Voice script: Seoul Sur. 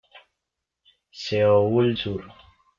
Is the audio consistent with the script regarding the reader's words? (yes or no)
yes